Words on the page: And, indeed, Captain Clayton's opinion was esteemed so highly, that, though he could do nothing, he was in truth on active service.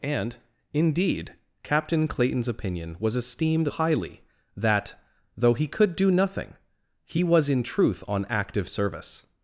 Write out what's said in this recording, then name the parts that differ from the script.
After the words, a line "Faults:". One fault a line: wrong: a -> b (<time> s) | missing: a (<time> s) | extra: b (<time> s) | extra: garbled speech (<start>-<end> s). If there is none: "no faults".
And, indeed, Captain Clayton's opinion was esteemed highly, that, though he could do nothing, he was in truth on active service.
Faults:
missing: so (3.7 s)